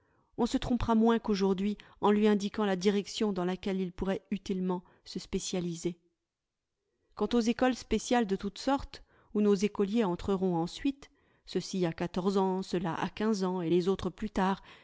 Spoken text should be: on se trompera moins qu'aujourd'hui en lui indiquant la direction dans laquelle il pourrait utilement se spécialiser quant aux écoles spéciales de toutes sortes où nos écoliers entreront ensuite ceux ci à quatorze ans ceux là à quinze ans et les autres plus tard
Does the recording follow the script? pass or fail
pass